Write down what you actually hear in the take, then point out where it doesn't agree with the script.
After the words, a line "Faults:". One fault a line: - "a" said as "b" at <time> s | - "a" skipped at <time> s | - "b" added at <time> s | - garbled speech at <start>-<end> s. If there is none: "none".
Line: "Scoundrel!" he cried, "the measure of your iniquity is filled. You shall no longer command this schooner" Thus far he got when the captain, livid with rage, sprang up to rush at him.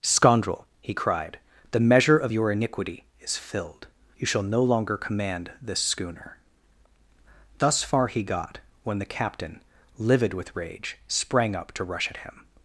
"Scoundrel!" he cried, "the measure of your iniquity is filled. You shall no longer command this schooner" Thus far he got when the captain, livid with rage, sprang up to rush at him.
Faults:
none